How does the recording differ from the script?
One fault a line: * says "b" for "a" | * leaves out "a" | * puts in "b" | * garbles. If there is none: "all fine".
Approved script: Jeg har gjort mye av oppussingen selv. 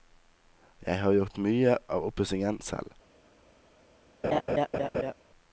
all fine